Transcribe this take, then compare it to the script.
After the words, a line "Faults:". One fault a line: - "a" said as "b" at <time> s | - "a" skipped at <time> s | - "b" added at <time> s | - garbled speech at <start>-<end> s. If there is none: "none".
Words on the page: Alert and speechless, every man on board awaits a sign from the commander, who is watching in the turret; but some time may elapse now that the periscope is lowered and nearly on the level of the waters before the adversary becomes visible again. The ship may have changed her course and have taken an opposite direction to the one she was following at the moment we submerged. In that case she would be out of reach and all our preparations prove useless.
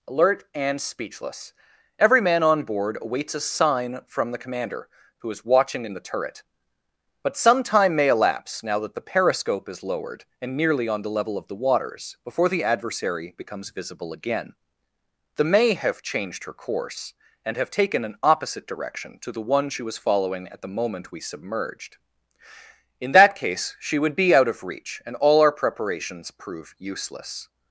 Alert and speechless, every man on board awaits a sign from the commander, who is watching in the turret; but some time may elapse now that the periscope is lowered and nearly on the level of the waters before the adversary becomes visible again. The may have changed her course and have taken an opposite direction to the one she was following at the moment we submerged. In that case she would be out of reach and all our preparations prove useless.
Faults:
- "ship" skipped at 15.4 s